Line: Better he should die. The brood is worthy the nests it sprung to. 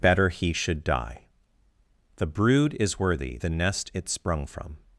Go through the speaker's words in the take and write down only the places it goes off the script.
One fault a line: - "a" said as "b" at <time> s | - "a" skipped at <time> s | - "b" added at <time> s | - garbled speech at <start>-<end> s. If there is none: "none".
- "nests" said as "nest" at 3.5 s
- "to" said as "from" at 4.5 s